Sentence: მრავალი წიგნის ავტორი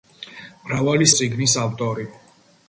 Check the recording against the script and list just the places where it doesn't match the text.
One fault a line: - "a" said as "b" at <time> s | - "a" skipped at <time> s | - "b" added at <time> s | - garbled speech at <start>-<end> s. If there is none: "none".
none